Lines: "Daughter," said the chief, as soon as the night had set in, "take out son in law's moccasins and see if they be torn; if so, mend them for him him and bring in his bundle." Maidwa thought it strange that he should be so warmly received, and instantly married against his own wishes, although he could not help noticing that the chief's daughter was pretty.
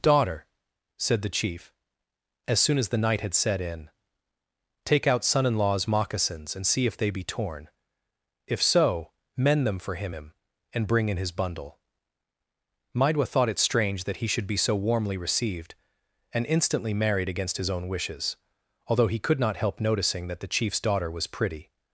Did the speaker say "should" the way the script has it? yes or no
yes